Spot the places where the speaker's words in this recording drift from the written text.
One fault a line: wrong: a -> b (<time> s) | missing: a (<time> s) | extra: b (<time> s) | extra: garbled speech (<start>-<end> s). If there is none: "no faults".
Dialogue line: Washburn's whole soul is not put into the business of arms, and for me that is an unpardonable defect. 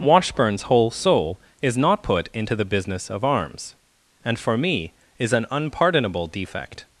missing: that (4.9 s)